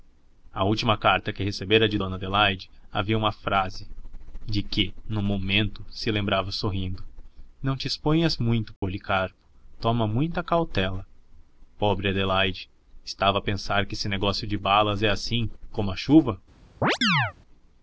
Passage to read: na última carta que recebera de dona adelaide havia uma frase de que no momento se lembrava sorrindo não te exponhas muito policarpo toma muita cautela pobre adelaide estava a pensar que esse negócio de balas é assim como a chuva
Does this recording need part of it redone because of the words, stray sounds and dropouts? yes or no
yes